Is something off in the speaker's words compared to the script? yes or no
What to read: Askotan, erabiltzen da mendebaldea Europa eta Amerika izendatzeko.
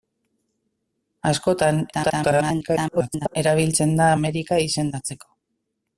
yes